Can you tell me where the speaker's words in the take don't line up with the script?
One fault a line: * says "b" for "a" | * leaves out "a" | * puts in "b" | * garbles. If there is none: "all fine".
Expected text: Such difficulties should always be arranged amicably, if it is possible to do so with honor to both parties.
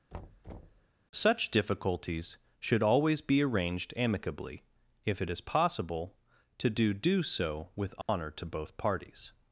* puts in "do"